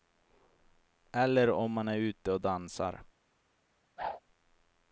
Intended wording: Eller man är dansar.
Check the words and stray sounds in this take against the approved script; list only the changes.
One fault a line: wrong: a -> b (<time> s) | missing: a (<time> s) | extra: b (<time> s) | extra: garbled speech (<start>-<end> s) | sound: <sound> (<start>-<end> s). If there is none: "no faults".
extra: om (1.5 s)
extra: ute och (2.0 s)
sound: whoosh (4.0-4.2 s)